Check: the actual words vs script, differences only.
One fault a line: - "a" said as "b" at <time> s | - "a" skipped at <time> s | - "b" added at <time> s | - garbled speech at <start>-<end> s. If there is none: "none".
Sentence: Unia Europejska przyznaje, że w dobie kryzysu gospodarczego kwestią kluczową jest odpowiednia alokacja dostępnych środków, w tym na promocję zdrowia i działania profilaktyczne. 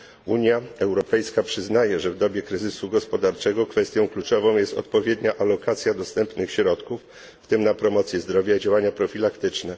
none